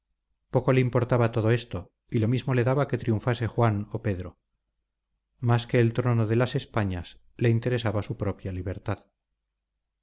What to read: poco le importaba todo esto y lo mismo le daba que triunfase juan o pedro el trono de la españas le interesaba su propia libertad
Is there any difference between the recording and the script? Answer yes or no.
yes